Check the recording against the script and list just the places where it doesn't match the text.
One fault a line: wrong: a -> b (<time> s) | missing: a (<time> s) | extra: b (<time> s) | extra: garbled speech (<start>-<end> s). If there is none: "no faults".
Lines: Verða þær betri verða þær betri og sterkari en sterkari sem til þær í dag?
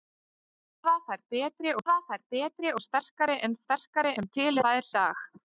no faults